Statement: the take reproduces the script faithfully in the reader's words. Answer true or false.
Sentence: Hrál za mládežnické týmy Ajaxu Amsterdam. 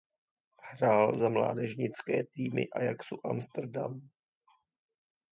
true